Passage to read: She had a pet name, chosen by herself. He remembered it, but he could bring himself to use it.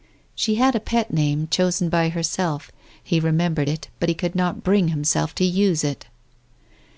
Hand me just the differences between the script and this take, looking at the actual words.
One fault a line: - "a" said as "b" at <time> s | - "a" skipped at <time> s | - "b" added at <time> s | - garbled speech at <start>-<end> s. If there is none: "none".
- "not" added at 4.4 s